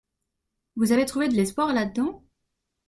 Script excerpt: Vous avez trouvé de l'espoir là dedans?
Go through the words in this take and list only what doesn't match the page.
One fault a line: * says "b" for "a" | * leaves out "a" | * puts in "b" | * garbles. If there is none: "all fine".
all fine